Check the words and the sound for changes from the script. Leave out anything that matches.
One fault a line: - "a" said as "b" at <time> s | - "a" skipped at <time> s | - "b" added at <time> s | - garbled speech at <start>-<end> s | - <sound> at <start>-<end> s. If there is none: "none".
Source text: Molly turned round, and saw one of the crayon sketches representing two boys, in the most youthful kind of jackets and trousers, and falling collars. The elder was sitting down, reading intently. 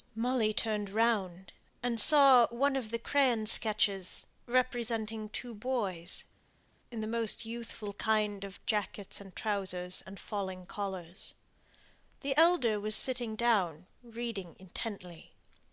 none